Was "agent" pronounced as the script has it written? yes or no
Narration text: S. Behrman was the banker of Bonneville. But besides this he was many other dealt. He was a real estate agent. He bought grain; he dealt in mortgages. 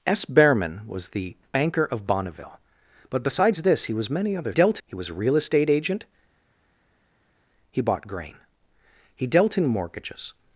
yes